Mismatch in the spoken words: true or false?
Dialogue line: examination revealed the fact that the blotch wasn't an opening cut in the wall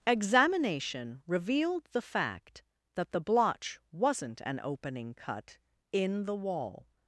false